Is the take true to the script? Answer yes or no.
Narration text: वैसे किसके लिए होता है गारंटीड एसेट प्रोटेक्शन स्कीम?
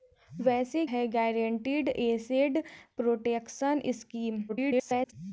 no